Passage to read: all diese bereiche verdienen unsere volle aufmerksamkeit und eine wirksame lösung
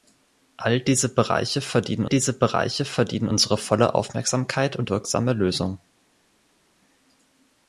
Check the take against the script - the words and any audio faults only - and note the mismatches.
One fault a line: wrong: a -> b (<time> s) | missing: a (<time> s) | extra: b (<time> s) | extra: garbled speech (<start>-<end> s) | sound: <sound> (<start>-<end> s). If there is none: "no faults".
extra: diese bereiche verdienen (2.0 s)
missing: eine (4.9 s)